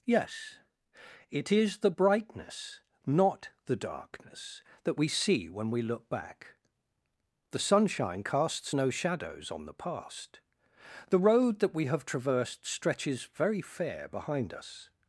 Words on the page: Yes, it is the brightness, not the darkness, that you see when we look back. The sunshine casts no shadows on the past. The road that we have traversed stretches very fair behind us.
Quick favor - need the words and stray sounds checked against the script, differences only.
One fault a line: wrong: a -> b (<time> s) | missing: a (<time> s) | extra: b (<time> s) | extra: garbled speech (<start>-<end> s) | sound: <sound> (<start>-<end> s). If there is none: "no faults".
wrong: you -> we (5.0 s)